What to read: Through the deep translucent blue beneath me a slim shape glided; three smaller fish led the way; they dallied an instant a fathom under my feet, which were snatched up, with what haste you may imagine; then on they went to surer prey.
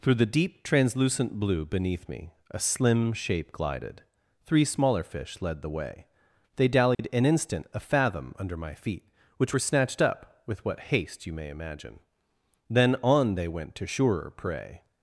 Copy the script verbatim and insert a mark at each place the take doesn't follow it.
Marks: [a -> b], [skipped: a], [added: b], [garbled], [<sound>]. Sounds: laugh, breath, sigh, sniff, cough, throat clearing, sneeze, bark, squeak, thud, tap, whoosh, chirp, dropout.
Through the deep translucent blue beneath me a slim shape glided; three smaller fish led the way; they dallied [dropout] an instant a fathom under my feet, which were snatched up, with what haste you may imagine; then on they went to surer prey.